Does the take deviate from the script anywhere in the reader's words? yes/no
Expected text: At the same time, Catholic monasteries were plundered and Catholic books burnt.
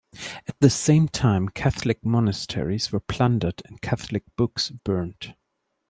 no